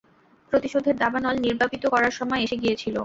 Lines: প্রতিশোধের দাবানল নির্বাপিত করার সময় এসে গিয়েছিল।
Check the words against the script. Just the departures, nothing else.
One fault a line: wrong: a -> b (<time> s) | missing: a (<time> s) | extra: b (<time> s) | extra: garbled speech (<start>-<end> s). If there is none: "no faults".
no faults